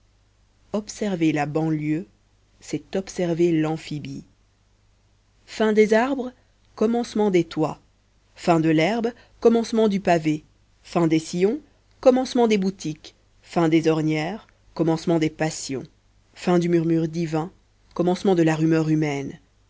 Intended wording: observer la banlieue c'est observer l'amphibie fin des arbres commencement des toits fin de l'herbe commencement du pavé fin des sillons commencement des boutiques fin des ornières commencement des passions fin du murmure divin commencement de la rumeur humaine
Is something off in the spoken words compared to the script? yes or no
no